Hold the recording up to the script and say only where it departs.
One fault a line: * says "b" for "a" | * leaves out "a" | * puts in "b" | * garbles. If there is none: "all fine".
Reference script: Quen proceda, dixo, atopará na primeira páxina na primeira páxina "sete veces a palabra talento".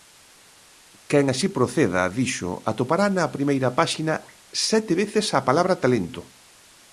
* puts in "así"
* leaves out "na primeira páxina"